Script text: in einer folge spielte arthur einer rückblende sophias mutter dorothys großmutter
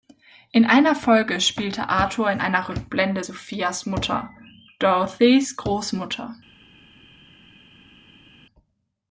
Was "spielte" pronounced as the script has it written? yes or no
yes